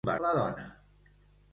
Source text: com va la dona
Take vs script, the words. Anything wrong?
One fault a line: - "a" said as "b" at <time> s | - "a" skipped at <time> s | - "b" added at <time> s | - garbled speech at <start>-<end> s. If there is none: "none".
none